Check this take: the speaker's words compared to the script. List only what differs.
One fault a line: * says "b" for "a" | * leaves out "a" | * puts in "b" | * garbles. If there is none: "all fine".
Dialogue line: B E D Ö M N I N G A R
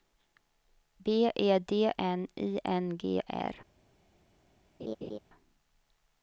* leaves out "Ö M"
* leaves out "A"